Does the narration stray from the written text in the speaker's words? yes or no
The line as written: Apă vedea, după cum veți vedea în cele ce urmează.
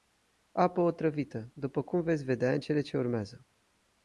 yes